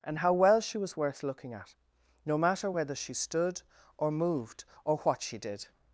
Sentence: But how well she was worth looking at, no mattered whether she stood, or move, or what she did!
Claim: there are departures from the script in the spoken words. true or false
true